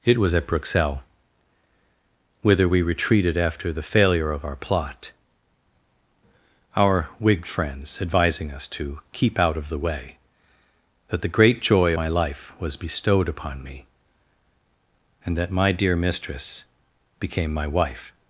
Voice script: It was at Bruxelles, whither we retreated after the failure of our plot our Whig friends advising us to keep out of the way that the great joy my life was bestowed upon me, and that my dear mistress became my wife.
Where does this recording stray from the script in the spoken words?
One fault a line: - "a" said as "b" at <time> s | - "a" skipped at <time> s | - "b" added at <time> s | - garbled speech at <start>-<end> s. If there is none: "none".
none